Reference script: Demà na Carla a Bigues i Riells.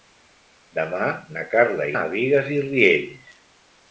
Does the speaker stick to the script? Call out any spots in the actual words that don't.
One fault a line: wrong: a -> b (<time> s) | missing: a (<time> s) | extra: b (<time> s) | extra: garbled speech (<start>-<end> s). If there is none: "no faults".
no faults